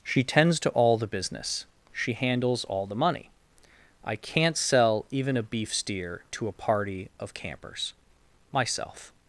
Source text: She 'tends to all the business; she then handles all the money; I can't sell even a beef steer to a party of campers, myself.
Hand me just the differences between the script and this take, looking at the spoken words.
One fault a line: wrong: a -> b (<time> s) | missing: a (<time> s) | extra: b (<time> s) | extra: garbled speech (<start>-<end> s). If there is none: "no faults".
missing: then (2.1 s)